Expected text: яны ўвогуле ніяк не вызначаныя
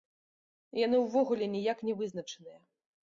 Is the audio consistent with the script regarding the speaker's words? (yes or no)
yes